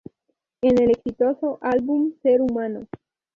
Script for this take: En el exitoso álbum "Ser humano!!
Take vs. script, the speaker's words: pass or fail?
pass